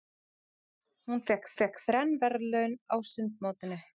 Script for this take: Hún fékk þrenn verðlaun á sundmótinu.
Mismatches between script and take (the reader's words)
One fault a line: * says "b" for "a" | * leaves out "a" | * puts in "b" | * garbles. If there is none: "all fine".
* puts in "fékk"